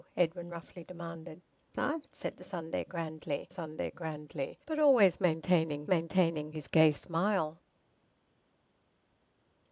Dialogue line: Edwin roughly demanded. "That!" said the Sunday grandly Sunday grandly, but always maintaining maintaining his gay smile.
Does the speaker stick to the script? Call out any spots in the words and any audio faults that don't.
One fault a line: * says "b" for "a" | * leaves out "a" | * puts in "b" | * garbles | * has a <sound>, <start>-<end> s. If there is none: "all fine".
all fine